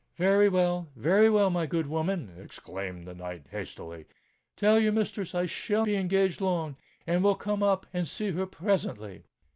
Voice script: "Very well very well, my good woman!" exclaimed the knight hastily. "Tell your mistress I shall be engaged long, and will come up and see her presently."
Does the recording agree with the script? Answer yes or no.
yes